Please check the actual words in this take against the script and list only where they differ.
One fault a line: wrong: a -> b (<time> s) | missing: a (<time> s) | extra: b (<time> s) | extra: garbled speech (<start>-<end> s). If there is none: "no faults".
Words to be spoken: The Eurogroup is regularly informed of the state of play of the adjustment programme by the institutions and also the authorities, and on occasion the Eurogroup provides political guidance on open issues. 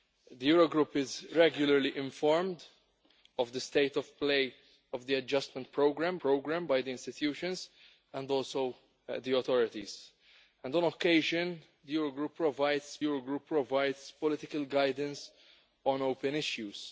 extra: programme (6.2 s)
extra: Eurogroup provides (13.0 s)